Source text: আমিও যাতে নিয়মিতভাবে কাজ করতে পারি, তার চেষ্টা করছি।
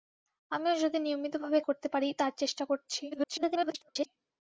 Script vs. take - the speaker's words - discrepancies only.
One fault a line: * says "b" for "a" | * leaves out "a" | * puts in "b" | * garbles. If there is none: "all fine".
* leaves out "কাজ"
* garbles